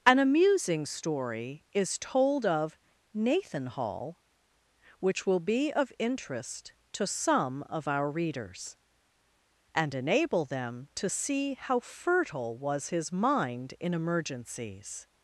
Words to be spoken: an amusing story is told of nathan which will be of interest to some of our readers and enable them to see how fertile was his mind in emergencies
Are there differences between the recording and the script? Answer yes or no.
yes